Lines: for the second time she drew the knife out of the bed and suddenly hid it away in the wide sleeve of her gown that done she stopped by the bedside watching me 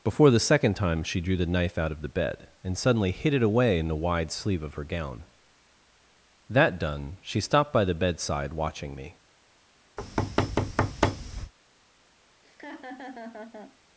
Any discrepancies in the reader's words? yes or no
yes